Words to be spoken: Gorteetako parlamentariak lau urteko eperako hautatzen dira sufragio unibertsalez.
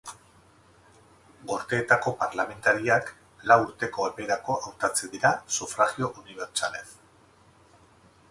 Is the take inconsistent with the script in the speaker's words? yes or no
no